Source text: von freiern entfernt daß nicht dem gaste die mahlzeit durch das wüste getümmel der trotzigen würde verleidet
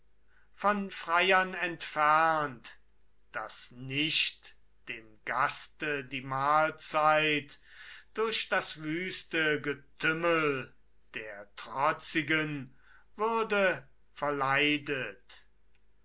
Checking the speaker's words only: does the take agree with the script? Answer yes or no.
yes